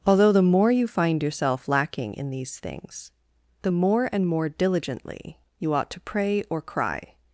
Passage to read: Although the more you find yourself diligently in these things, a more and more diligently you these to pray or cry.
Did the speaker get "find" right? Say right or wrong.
right